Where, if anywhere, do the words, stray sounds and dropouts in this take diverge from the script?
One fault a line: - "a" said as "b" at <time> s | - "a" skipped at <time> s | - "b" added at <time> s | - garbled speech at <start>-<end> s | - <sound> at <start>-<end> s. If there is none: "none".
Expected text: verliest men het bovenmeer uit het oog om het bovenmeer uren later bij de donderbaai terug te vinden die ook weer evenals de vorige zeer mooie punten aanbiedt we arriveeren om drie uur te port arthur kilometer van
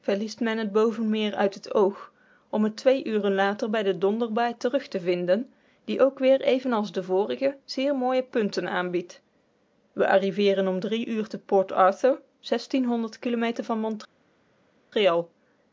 - "bovenmeer" said as "twee" at 2.8 s